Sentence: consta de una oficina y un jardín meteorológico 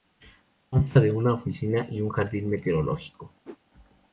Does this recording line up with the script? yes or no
yes